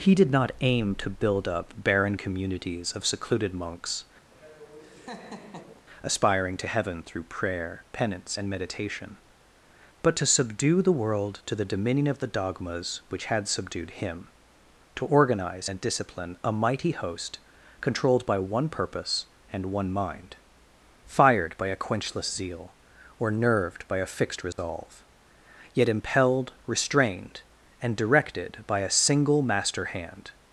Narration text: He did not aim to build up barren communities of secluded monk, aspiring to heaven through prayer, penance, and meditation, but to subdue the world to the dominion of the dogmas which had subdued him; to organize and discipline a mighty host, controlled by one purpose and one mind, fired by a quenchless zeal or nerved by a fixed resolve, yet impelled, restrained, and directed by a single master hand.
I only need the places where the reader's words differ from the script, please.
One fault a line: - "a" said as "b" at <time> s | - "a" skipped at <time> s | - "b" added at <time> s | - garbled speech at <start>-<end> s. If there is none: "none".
- "monk" said as "monks" at 3.5 s